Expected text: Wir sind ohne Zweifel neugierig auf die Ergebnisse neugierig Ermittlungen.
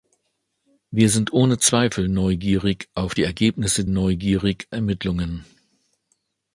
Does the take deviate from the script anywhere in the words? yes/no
no